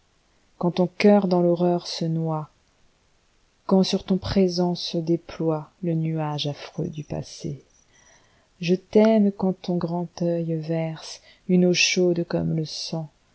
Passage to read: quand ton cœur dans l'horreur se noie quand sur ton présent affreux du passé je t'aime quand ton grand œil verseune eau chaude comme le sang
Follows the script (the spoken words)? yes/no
no